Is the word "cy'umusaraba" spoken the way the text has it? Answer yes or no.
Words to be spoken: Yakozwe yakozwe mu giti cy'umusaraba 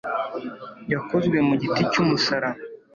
yes